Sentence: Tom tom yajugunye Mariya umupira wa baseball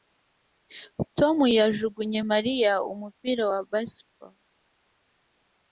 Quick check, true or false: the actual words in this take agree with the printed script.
false